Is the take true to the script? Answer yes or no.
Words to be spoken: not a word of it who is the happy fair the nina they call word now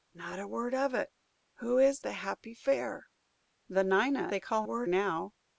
yes